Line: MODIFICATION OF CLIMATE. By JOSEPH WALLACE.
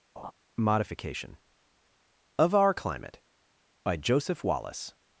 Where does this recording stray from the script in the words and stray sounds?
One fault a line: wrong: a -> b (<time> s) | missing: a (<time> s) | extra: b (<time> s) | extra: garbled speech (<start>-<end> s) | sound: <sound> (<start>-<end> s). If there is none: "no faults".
sound: laugh (0.2-0.3 s)
extra: OUR (2.5 s)